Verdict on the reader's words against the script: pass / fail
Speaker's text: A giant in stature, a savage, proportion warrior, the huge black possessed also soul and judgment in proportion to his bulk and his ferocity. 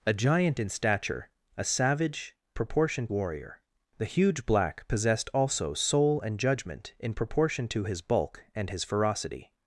pass